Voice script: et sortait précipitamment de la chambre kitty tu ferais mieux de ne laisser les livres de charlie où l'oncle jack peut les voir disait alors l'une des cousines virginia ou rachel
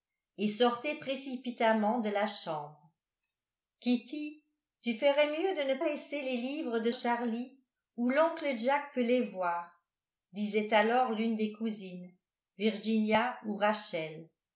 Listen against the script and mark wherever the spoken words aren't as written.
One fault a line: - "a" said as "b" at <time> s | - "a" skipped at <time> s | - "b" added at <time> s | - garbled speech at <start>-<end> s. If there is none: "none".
none